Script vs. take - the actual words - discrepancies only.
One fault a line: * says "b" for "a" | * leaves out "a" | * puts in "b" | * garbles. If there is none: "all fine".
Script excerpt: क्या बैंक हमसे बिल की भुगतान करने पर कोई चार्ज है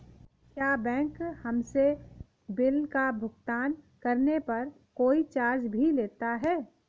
* says "का" for "की"
* puts in "भी लेता"